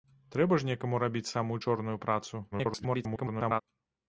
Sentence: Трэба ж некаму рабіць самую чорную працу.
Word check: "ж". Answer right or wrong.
right